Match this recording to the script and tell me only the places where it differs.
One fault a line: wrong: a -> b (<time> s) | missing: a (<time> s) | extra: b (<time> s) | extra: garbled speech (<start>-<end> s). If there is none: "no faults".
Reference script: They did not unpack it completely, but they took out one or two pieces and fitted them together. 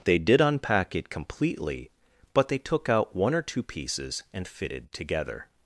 missing: not (0.4 s)
missing: them (4.9 s)